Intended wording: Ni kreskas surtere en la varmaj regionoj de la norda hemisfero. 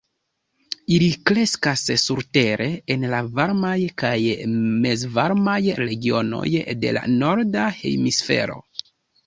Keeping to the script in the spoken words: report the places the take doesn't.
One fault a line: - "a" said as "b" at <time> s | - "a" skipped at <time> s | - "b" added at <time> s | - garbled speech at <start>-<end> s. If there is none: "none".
- "Ni" said as "Ili" at 0.9 s
- "kaj mezvarmaj" added at 4.0 s